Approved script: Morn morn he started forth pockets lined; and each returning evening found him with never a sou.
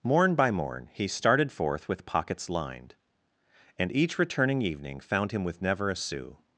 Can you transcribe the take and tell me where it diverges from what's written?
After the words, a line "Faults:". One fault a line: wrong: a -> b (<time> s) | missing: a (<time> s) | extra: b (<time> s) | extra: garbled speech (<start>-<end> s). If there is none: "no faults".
Morn by morn he started forth with pockets lined; and each returning evening found him with never a sou.
Faults:
extra: by (0.3 s)
extra: with (1.9 s)